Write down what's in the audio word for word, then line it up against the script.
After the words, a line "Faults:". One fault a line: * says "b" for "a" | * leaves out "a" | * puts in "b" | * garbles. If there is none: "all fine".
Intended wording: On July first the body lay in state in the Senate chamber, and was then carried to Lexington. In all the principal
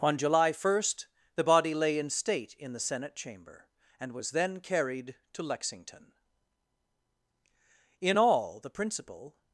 On July first the body lay in state in the Senate chamber, and was then carried to Lexington. In all the principal
Faults:
all fine